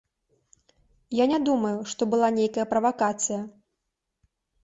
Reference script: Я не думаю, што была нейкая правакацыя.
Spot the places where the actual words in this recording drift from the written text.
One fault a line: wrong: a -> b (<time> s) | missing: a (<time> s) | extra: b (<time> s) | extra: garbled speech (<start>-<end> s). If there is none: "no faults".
no faults